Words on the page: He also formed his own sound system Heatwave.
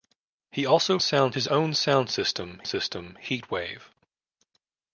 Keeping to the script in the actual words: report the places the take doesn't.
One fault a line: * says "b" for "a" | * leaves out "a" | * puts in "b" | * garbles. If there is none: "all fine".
* says "sound" for "formed"
* puts in "system"